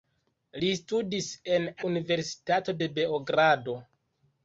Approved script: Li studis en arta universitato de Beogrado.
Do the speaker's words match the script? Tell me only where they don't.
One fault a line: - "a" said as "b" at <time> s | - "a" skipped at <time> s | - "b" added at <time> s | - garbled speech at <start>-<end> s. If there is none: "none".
- "arta" skipped at 1.7 s